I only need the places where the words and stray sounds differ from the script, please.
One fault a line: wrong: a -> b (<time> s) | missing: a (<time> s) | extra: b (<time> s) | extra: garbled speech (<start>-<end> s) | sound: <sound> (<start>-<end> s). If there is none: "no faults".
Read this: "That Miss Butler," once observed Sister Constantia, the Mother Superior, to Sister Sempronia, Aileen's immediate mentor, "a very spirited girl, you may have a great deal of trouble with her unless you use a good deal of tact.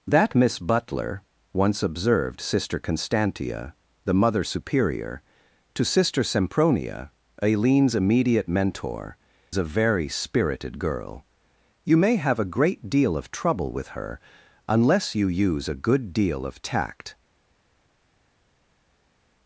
no faults